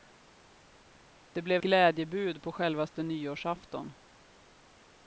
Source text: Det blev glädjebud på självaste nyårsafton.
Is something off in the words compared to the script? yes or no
no